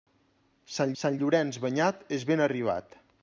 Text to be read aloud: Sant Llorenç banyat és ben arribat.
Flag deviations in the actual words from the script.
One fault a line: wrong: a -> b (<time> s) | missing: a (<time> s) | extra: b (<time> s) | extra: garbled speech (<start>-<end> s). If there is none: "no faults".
extra: sant (1.0 s)